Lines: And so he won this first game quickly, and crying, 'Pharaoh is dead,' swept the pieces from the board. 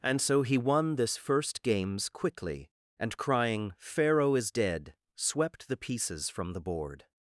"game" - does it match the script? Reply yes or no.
no